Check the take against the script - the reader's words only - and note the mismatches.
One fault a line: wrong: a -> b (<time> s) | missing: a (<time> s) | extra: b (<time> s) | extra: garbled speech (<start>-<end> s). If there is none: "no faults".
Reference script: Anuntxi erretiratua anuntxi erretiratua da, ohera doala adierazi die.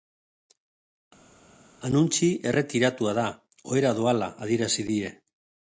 missing: anuntxi erretiratua (3.2 s)